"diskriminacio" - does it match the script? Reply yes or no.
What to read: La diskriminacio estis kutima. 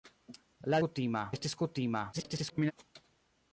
no